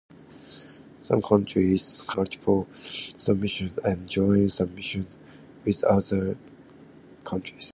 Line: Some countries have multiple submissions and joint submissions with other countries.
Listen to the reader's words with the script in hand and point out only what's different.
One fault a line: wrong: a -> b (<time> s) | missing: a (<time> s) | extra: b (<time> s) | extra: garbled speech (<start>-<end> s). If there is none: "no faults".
missing: have (2.1 s)